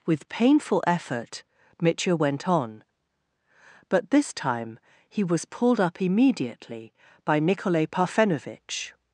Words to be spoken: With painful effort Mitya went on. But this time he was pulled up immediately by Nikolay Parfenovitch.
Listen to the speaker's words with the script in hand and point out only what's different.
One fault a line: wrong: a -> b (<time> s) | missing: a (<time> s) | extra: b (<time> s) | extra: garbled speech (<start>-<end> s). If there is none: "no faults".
no faults